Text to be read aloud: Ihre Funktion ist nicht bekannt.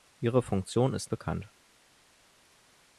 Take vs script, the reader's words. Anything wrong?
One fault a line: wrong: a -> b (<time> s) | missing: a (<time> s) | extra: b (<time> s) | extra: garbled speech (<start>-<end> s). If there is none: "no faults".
missing: nicht (1.1 s)